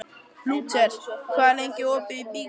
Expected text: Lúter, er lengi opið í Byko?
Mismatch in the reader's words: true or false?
true